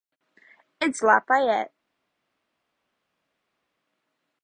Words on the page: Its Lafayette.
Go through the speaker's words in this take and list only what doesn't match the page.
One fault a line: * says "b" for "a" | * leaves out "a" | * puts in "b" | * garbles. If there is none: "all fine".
all fine